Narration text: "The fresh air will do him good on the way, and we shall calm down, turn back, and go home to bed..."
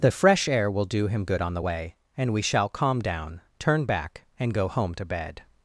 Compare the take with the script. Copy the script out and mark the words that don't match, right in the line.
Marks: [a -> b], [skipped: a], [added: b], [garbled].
"The fresh air will do him good on the way, and we shall calm down, turn back, and go home to bed..."